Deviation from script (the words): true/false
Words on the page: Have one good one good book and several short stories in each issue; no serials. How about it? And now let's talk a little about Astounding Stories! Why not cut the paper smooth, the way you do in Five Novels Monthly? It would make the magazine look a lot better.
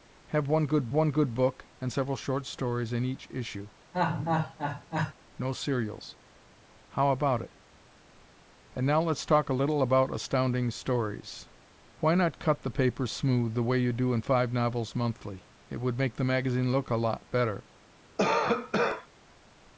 false